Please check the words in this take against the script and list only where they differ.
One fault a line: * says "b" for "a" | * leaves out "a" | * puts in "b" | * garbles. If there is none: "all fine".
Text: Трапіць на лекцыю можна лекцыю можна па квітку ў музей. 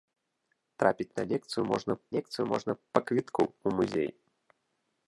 all fine